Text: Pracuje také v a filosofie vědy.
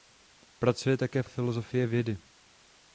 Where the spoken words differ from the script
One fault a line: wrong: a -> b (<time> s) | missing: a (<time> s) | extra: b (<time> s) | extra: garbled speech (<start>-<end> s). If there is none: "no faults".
no faults